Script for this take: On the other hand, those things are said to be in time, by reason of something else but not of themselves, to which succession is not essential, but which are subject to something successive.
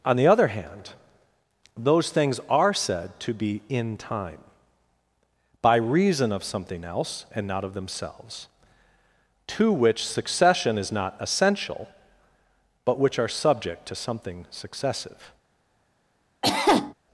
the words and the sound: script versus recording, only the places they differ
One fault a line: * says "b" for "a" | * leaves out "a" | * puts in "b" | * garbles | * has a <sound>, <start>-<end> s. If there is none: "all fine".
* says "and" for "but"
* has a cough, 16.4-16.9 s